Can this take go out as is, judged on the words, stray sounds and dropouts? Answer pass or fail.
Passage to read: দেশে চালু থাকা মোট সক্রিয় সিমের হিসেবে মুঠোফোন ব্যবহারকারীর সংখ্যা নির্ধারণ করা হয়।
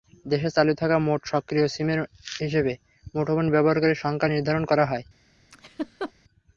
fail